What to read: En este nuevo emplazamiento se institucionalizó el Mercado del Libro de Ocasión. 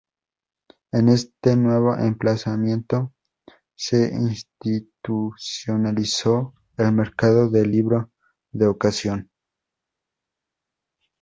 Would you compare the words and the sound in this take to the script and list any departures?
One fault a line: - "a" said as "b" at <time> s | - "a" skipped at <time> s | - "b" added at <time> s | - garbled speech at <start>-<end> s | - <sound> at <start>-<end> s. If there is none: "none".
none